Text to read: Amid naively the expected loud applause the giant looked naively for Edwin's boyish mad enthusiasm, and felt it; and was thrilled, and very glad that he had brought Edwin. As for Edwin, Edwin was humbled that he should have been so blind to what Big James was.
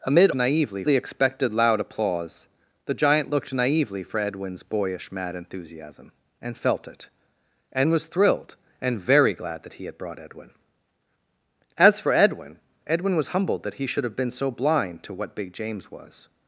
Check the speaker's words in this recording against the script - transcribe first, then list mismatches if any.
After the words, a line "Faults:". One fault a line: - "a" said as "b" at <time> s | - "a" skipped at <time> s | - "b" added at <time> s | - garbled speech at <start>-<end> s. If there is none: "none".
Amid naively the expected loud applause the giant looked naively for Edwin's boyish mad enthusiasm, and felt it; and was thrilled, and very glad that he had brought Edwin. As for Edwin, Edwin was humbled that he should have been so blind to what Big James was.
Faults:
none